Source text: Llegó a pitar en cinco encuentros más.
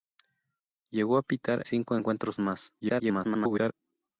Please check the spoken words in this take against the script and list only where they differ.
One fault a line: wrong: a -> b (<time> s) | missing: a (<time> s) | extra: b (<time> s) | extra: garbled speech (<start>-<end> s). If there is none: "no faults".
missing: en (1.6 s)
extra: garbled speech (2.8-3.7 s)